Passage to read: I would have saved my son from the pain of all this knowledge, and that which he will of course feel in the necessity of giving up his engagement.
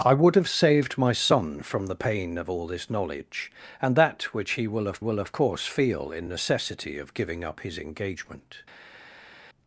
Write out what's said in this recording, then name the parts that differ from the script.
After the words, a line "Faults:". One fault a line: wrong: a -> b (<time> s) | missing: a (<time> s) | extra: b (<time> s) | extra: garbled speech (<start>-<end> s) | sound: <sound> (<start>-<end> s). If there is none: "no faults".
I would have saved my son from the pain of all this knowledge, and that which he will of will of course feel in necessity of giving up his engagement.
Faults:
extra: will of (5.0 s)
missing: the (6.3 s)